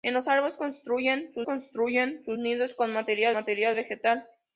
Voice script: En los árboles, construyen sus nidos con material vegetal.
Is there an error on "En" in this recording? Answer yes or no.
no